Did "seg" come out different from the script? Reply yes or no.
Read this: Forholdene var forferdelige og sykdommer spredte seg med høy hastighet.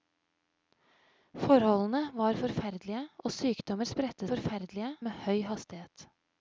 yes